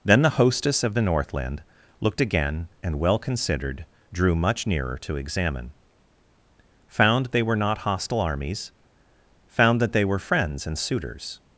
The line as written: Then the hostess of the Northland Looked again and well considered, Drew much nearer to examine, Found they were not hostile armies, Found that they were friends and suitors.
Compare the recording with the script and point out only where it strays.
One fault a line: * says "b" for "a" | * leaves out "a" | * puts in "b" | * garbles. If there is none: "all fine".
all fine